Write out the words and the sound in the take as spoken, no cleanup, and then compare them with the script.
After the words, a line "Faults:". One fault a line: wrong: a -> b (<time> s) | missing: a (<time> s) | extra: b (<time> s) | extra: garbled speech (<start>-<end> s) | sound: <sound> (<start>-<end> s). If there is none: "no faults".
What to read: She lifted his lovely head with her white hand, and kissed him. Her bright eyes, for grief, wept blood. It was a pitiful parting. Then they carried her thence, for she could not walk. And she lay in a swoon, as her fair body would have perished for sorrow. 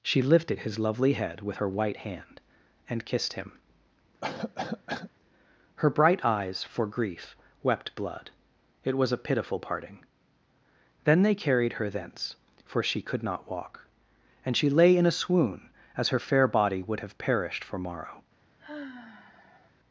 She lifted his lovely head with her white hand, and kissed him. Her bright eyes, for grief, wept blood. It was a pitiful parting. Then they carried her thence, for she could not walk. And she lay in a swoon, as her fair body would have perished for morrow.
Faults:
sound: cough (4.2-5.1 s)
wrong: sorrow -> morrow (17.8 s)
sound: sigh (18.6-19.7 s)